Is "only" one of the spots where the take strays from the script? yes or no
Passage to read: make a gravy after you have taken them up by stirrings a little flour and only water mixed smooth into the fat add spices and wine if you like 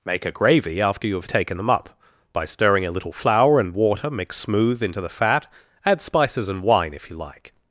yes